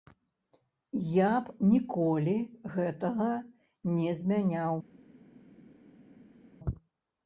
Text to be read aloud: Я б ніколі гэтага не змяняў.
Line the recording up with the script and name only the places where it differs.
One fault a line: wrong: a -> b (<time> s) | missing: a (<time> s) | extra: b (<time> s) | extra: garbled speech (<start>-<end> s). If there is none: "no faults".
no faults